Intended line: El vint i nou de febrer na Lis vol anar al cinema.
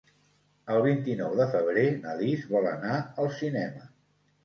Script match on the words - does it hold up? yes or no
yes